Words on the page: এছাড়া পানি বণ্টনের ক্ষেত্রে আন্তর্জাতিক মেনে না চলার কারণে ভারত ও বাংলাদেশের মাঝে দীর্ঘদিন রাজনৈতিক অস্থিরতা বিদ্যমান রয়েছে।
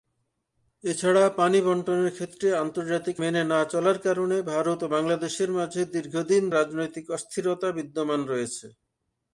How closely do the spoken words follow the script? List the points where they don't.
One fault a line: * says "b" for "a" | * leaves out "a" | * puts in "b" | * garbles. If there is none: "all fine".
all fine